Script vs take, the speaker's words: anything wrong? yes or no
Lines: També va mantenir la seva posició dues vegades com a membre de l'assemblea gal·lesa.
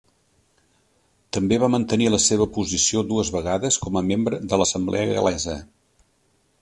no